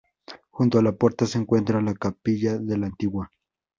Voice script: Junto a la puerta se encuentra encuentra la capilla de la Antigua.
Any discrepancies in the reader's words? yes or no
yes